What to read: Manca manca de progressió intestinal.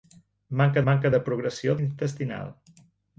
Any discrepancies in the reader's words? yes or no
no